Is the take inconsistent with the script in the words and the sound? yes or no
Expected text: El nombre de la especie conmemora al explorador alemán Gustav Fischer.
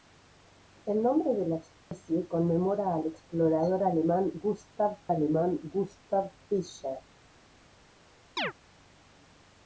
yes